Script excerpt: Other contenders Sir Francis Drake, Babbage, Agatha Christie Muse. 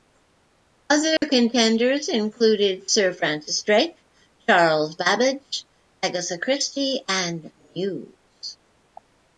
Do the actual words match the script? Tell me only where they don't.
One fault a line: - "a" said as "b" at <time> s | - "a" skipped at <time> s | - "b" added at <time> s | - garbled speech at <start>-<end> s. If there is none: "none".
- "included" added at 2.1 s
- "Charles" added at 4.5 s
- "and" added at 7.1 s